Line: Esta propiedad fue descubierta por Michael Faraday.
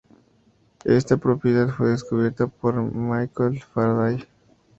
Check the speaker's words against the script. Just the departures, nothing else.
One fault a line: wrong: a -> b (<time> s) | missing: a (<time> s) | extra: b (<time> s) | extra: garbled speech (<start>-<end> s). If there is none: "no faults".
no faults